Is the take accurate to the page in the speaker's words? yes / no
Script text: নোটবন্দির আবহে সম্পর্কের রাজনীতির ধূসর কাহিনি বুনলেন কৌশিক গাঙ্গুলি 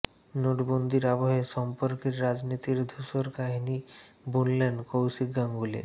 yes